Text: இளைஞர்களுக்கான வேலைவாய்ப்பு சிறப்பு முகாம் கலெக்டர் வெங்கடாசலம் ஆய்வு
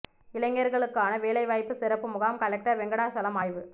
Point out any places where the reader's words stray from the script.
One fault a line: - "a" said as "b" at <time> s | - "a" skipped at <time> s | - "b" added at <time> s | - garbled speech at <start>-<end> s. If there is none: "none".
none